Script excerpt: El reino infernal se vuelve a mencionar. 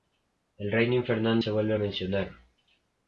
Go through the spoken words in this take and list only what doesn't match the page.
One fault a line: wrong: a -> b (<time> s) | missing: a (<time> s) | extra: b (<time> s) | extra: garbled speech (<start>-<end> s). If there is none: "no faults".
no faults